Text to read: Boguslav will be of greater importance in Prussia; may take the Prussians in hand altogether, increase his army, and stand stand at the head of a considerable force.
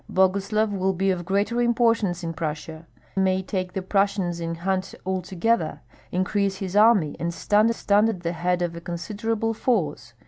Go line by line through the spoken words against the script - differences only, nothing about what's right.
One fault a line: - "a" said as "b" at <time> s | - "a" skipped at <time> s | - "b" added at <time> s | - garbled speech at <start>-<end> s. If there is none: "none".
none